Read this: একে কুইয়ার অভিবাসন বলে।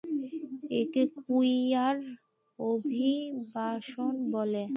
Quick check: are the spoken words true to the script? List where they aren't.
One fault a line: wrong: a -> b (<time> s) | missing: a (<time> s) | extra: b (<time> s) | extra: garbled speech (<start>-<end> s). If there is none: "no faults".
no faults